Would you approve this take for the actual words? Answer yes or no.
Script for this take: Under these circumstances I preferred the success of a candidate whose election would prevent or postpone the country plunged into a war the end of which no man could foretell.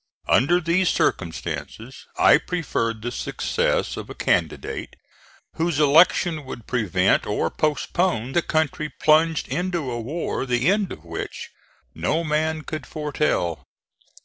yes